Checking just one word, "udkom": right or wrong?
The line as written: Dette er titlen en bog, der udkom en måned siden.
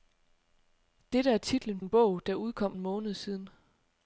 right